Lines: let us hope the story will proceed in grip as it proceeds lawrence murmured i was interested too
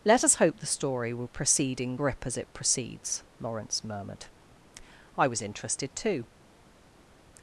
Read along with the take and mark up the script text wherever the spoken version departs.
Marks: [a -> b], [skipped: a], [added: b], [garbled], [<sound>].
let us hope the story will proceed in grip as it proceeds lawrence murmured i was interested too